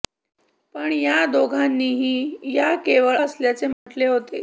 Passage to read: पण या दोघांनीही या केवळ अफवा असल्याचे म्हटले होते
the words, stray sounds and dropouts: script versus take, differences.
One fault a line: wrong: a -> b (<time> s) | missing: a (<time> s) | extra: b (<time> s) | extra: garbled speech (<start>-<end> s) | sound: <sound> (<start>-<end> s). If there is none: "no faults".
missing: अफवा (3.2 s)
sound: dropout (3.7-3.9 s)